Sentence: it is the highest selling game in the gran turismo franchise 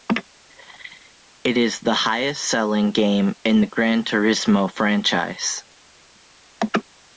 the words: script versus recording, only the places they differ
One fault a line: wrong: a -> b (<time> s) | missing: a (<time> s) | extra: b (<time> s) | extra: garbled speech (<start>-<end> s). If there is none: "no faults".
no faults